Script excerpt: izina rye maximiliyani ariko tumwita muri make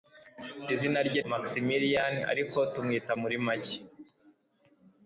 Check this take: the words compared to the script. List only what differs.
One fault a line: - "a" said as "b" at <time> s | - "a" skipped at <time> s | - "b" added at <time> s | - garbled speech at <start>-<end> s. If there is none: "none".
none